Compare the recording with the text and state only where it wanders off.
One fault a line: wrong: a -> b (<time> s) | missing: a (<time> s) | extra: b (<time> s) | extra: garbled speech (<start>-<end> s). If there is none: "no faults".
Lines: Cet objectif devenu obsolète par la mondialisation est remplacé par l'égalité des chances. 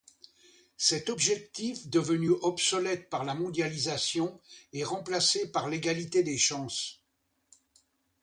no faults